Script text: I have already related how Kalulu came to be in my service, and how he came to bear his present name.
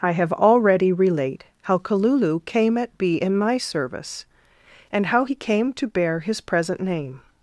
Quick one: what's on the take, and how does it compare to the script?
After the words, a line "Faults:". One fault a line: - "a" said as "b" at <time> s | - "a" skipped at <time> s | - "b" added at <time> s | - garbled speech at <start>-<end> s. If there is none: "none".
I have already relate how Kalulu came at be in my service, and how he came to bear his present name.
Faults:
- "related" said as "relate" at 0.9 s
- "to" said as "at" at 2.8 s